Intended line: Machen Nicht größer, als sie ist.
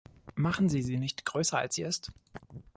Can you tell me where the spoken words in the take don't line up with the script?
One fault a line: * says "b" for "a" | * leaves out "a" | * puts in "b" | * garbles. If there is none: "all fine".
* puts in "Sie sie"